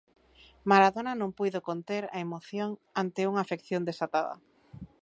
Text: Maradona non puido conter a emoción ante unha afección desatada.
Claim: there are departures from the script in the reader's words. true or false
false